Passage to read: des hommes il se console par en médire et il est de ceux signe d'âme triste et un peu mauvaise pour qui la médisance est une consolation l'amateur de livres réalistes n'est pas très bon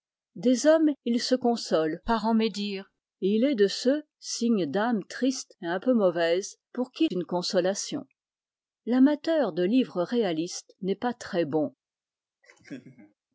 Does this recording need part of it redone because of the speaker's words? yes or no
yes